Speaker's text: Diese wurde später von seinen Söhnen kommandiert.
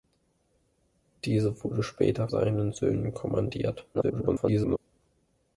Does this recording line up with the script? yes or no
no